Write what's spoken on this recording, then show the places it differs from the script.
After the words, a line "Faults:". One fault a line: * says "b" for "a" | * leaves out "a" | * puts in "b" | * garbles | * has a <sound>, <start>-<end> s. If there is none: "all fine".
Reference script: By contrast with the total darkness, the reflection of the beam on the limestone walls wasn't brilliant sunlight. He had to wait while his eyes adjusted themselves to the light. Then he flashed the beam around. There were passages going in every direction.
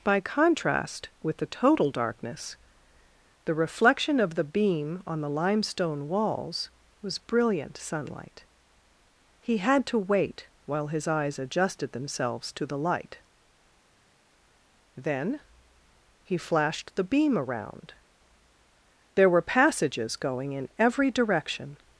By contrast with the total darkness, the reflection of the beam on the limestone walls was brilliant sunlight. He had to wait while his eyes adjusted themselves to the light. Then he flashed the beam around. There were passages going in every direction.
Faults:
* says "was" for "wasn't"